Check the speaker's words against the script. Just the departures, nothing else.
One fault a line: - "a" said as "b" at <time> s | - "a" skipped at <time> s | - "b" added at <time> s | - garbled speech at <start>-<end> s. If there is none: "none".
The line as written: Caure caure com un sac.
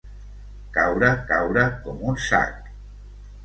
none